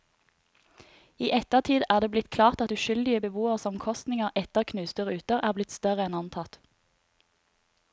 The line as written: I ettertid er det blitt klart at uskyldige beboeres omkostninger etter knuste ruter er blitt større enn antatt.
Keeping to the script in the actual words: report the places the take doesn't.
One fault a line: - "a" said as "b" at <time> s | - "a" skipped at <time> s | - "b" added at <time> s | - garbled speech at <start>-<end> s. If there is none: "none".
none